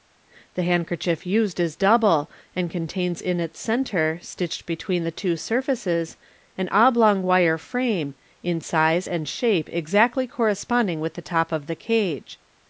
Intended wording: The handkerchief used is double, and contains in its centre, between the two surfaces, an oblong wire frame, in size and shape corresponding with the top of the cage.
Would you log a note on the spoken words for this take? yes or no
yes